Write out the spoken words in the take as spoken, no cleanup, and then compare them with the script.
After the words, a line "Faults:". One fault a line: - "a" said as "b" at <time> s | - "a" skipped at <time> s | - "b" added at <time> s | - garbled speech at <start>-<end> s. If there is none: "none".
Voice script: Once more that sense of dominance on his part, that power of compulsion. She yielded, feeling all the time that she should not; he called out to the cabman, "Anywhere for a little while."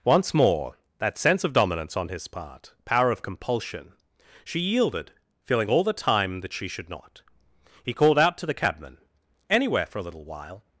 Once more that sense of dominance on his part, power of compulsion. She yielded, feeling all the time that she should not; he called out to the cabman, "Anywhere for a little while."
Faults:
- "that" skipped at 2.7 s